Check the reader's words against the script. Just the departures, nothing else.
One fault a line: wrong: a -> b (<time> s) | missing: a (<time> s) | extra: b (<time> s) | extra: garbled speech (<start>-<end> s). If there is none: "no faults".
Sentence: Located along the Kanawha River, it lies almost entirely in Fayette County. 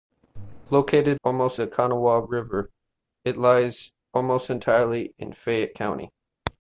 wrong: along -> almost (1.2 s)